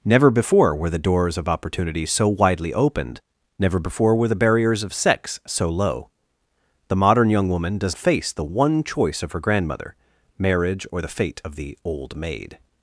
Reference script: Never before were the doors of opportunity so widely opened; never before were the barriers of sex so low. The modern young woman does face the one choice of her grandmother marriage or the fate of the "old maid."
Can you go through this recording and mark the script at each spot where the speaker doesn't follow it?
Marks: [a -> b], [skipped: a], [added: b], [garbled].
Never before were the doors of opportunity so widely opened; never before were the barriers of sex so low. The modern young woman does face the one choice of her grandmother marriage or the fate of the "old maid."